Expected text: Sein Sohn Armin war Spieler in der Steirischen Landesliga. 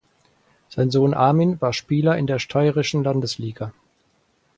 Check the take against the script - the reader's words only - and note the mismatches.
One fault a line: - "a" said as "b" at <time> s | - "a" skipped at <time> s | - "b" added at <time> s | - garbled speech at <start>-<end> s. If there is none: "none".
none